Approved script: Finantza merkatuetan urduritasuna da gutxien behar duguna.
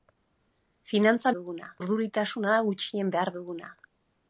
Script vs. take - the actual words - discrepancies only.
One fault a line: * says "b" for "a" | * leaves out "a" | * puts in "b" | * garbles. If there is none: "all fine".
* says "duguna" for "merkatuetan"